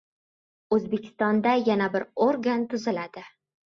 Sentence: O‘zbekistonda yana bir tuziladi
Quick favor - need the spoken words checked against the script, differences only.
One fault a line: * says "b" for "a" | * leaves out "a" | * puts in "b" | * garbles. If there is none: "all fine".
* puts in "organ"